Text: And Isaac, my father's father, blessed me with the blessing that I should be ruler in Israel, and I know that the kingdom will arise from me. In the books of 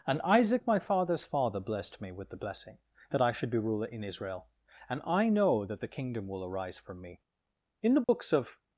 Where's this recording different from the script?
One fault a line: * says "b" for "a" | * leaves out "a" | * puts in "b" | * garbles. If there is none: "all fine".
all fine